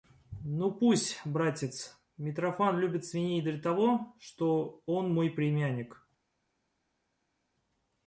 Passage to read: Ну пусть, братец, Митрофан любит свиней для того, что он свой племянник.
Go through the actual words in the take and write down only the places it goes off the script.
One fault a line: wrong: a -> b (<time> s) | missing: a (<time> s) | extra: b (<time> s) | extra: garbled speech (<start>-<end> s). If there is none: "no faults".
wrong: свой -> мой (5.1 s)